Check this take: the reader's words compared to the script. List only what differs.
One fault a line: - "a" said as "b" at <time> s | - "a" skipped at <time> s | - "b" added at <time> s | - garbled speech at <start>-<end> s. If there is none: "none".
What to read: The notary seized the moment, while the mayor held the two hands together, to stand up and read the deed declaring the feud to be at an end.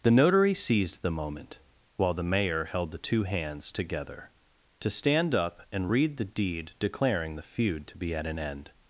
none